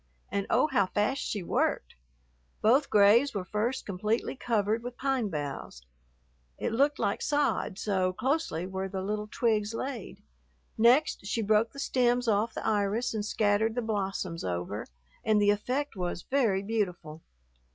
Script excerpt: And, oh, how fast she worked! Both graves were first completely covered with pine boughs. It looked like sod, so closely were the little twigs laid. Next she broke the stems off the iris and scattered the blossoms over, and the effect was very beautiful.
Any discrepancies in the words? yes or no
no